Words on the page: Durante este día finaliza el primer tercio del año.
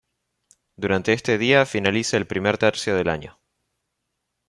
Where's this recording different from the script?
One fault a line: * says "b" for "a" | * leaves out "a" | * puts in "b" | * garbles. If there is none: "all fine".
all fine